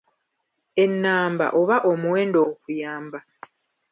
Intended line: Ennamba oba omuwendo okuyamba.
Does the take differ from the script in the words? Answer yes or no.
no